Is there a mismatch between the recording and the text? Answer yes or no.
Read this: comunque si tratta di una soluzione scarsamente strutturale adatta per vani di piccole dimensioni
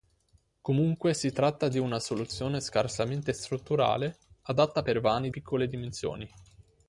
yes